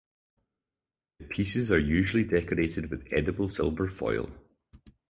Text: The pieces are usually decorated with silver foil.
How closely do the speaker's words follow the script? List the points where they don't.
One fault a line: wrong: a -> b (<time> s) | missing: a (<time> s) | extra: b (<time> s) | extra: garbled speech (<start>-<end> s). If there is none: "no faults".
extra: edible (3.1 s)